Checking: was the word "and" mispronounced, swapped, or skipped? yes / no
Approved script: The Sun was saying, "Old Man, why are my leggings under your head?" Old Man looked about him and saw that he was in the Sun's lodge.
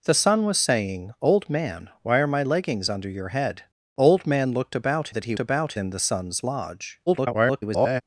yes